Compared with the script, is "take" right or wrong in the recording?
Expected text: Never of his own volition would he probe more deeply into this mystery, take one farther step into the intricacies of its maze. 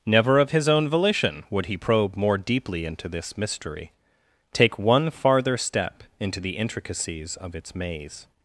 right